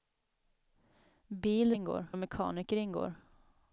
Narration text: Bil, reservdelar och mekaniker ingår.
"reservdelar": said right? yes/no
no